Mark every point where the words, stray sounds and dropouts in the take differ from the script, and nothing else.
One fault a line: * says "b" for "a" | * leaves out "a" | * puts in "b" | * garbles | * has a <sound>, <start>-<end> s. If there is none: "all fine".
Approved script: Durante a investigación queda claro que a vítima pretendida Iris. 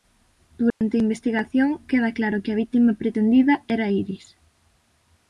* has a dropout, 0.7-0.8 s
* puts in "era"